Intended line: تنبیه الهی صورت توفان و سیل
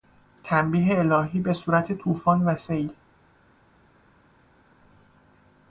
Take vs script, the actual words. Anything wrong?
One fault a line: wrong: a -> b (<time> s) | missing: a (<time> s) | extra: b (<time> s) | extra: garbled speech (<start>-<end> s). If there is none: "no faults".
extra: به (1.4 s)